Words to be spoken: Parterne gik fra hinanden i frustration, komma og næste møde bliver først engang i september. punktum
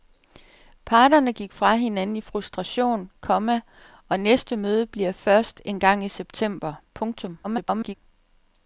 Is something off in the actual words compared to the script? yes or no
yes